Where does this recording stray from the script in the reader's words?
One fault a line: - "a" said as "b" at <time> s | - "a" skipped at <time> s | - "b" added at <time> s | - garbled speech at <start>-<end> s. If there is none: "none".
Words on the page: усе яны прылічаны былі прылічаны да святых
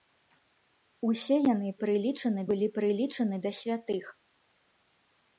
none